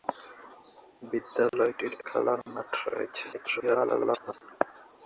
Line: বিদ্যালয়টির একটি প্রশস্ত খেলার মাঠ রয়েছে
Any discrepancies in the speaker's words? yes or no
yes